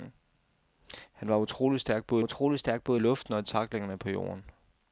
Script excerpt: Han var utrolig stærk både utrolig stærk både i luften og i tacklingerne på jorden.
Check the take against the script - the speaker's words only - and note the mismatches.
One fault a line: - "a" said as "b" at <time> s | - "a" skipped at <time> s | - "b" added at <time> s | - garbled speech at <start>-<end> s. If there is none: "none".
none